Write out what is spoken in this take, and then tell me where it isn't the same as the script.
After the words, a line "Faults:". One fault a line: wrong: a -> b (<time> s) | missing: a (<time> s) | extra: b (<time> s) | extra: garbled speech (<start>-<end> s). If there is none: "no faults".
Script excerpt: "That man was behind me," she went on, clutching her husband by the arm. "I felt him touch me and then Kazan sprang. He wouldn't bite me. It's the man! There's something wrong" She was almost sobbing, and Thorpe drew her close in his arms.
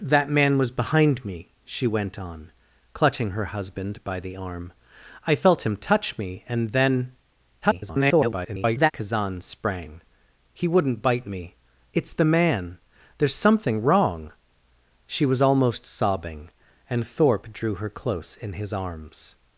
"That man was behind me," she went on, clutching her husband by the arm. "I felt him touch me and then [garbled] Kazan sprang. He wouldn't bite me. It's the man! There's something wrong" She was almost sobbing, and Thorpe drew her close in his arms.
Faults:
extra: garbled speech (7.6-8.9 s)